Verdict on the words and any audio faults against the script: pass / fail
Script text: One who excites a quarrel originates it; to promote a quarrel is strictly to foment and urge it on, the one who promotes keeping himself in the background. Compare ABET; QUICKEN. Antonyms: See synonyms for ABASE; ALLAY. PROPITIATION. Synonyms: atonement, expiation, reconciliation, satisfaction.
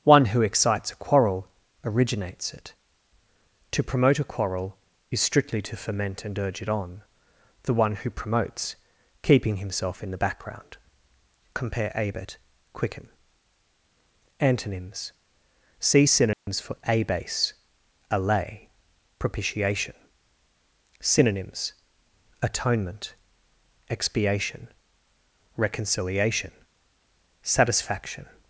fail